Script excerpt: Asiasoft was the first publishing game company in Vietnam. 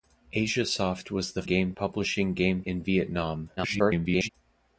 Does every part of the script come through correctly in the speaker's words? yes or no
no